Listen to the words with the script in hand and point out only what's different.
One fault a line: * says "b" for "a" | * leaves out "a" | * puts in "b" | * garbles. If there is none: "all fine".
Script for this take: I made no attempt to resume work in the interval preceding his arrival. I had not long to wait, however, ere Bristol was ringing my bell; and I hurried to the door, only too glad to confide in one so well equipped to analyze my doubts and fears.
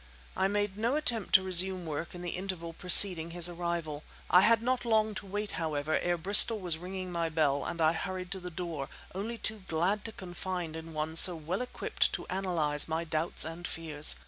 all fine